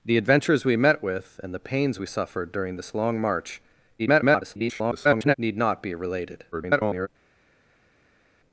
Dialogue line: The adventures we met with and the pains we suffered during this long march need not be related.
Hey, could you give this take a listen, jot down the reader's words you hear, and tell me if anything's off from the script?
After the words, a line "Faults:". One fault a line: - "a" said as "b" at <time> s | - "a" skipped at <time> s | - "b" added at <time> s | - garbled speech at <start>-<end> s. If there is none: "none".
The adventures we met with and the pains we suffered during this long march [garbled] need not be related. [garbled]
Faults:
- garbled speech at 4.0-5.3 s
- garbled speech at 6.5-7.1 s